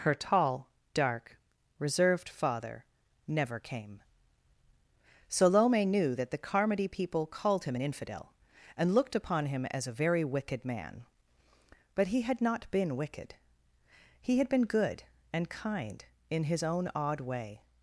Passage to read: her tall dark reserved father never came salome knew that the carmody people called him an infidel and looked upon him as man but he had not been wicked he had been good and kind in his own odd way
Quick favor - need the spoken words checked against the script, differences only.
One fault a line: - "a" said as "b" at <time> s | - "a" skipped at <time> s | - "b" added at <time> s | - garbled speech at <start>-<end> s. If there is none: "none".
- "a very wicked" added at 9.9 s